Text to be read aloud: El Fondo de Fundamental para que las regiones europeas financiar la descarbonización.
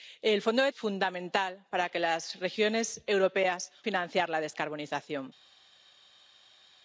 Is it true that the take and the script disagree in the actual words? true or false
false